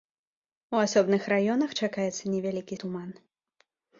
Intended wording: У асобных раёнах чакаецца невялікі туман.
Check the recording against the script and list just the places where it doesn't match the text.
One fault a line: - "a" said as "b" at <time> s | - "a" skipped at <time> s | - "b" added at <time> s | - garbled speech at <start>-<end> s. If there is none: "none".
none